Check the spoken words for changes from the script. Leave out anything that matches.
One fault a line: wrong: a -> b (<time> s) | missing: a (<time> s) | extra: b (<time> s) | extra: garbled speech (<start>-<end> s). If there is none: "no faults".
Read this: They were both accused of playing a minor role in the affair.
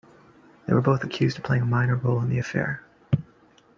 no faults